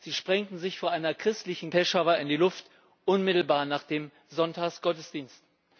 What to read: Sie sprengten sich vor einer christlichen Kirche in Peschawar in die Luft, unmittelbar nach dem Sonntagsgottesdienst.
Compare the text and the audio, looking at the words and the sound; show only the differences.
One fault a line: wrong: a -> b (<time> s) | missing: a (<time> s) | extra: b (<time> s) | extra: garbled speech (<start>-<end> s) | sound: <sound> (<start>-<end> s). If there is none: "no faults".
missing: Kirche in (1.7 s)